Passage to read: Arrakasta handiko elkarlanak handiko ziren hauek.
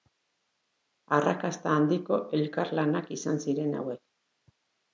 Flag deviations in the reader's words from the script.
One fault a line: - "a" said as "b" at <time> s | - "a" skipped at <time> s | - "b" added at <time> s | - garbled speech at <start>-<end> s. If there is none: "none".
- "handiko" said as "izan" at 3.2 s